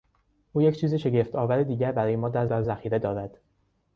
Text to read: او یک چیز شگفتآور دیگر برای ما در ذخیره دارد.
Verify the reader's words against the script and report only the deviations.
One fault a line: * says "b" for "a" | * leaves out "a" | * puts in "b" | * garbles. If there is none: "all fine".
* puts in "در"